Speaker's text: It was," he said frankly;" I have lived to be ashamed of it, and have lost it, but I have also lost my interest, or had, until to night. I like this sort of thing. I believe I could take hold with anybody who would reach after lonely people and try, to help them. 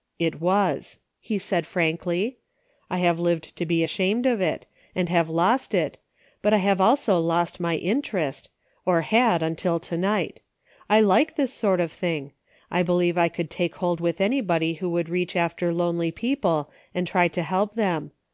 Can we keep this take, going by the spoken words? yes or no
yes